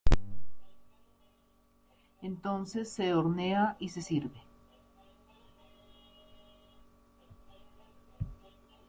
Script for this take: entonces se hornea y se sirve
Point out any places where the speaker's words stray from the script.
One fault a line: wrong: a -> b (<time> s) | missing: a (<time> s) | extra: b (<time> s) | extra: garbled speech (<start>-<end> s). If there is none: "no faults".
no faults